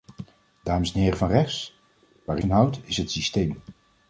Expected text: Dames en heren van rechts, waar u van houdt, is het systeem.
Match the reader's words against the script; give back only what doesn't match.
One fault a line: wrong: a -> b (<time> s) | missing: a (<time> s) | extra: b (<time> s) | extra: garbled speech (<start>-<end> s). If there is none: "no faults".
no faults